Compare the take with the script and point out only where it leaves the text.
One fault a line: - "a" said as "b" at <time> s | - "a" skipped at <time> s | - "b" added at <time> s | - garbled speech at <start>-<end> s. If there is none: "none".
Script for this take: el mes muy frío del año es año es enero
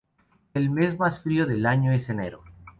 - "muy" said as "más" at 1.0 s
- "año es" skipped at 2.1 s